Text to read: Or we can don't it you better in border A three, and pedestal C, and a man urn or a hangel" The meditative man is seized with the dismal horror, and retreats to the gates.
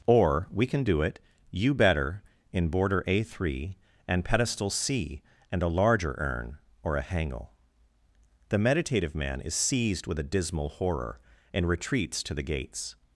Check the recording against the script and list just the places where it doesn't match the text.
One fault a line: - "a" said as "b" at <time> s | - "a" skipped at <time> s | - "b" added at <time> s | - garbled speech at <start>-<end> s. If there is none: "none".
- "don't" said as "do" at 0.8 s
- "man" said as "larger" at 5.7 s
- "the" said as "a" at 10.2 s